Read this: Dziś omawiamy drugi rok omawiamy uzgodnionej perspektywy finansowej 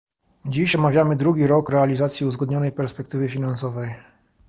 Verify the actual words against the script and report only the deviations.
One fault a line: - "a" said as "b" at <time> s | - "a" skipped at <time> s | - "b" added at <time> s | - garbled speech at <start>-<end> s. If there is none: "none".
- "omawiamy" said as "realizacji" at 1.7 s